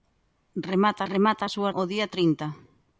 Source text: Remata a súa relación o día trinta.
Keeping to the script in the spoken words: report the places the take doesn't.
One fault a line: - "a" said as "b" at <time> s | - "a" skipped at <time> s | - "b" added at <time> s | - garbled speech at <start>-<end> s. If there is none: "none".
- "remata" added at 1.1 s
- "relación" skipped at 1.7 s